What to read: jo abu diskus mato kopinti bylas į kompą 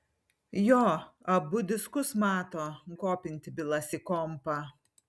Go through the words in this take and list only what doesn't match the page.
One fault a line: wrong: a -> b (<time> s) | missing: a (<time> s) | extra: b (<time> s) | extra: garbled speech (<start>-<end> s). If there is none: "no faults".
no faults